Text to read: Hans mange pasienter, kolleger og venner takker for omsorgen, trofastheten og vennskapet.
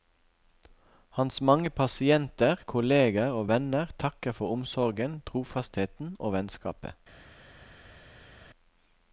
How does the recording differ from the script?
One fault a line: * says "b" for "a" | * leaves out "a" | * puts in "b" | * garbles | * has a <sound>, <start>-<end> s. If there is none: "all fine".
all fine